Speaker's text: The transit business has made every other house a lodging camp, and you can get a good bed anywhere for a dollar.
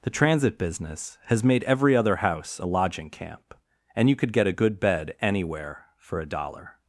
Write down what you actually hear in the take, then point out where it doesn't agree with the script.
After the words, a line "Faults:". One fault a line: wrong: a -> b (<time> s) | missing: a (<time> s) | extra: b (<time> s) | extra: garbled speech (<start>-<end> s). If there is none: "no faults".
The transit business has made every other house a lodging camp, and you could get a good bed anywhere for a dollar.
Faults:
wrong: can -> could (4.2 s)